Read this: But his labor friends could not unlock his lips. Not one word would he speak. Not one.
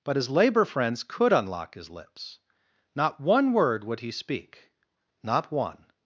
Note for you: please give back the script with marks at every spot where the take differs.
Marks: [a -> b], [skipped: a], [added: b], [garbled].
But his labor friends could [skipped: not] unlock his lips. Not one word would he speak. Not one.